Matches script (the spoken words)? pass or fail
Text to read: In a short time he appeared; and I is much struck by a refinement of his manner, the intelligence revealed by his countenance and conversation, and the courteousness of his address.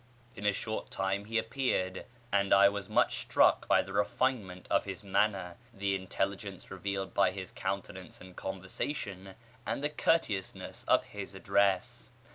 fail